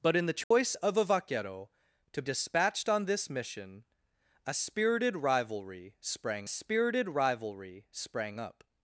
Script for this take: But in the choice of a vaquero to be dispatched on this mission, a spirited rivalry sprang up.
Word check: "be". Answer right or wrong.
wrong